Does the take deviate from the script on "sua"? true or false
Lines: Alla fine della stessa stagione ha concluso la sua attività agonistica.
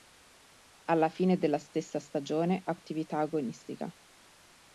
true